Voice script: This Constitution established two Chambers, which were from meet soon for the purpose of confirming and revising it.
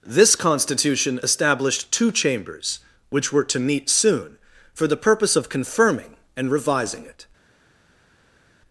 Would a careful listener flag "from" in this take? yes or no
yes